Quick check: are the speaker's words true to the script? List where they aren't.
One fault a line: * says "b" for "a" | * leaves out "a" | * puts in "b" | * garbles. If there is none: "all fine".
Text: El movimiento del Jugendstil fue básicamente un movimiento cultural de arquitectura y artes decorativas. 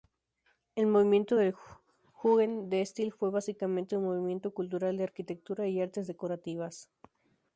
all fine